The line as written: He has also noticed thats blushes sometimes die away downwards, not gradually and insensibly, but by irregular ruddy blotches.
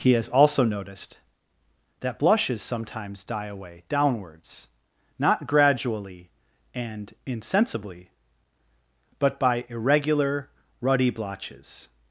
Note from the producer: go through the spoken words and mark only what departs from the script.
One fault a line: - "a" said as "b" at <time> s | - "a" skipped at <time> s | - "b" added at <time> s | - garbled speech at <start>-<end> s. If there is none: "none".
- "thats" said as "that" at 2.0 s